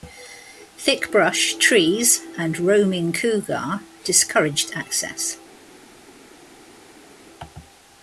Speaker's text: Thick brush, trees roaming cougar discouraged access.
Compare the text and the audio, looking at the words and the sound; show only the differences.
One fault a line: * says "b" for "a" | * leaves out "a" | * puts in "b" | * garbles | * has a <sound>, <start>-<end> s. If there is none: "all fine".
* puts in "and"